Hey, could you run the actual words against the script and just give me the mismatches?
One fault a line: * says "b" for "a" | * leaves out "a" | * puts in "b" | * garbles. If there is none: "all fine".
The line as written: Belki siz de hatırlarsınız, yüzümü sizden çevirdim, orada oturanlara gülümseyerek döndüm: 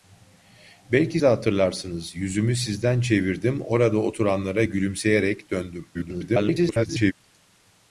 * leaves out "siz"
* garbles